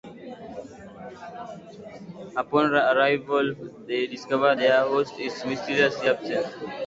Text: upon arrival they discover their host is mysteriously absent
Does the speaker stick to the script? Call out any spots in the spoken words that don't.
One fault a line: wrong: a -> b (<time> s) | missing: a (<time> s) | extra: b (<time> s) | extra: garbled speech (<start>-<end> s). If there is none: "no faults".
no faults